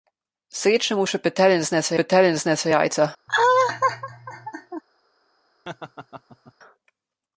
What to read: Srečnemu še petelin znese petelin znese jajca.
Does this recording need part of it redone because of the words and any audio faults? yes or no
yes